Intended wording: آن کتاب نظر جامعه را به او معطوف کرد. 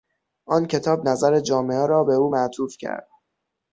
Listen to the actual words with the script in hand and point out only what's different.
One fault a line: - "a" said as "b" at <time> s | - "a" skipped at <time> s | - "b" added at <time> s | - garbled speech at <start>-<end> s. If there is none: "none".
none